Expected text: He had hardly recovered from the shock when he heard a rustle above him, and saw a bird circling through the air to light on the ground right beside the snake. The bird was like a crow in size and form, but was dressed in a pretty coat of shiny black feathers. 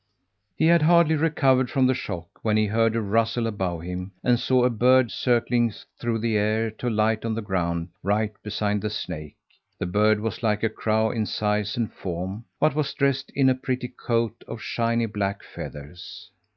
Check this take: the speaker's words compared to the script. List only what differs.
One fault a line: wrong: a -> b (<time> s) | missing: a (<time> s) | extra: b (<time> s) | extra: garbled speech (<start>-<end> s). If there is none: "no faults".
no faults